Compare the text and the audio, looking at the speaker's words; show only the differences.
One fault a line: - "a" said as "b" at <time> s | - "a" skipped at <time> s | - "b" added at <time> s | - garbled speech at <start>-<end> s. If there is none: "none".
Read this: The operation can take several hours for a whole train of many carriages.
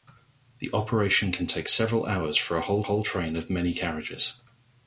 - "whole" added at 2.8 s